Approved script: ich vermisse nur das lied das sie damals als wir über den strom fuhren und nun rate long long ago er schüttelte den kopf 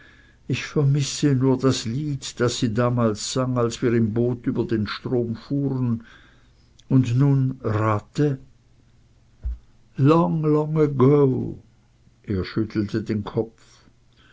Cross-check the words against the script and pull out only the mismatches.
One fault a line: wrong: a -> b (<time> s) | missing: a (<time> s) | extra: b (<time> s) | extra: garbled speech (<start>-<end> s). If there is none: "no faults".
extra: sang (3.3 s)
extra: im boot (3.9 s)